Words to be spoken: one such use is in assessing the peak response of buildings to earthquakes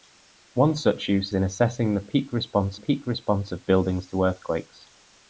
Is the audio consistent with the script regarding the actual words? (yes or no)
no